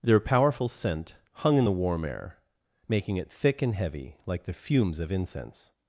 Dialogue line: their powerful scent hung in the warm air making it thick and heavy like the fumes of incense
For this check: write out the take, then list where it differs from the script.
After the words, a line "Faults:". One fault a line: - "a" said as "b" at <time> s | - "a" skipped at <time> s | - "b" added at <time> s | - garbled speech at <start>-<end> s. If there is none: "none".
their powerful scent hung in the warm air making it thick and heavy like the fumes of incense
Faults:
none